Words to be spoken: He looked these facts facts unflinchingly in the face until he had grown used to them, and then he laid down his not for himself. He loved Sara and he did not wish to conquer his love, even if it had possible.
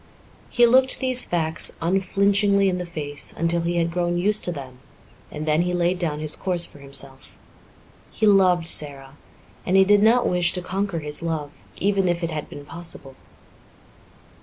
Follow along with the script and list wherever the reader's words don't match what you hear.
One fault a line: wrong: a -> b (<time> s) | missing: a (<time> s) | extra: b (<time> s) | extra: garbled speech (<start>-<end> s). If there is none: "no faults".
missing: facts (1.7 s)
wrong: not -> course (6.3 s)
extra: been (12.5 s)